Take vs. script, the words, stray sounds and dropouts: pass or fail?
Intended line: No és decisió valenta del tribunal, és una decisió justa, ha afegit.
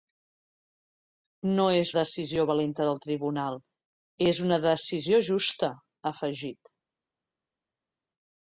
pass